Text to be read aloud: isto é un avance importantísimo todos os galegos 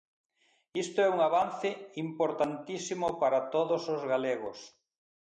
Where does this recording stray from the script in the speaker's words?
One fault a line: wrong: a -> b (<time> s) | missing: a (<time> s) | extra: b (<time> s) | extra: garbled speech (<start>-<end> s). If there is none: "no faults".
extra: para (3.2 s)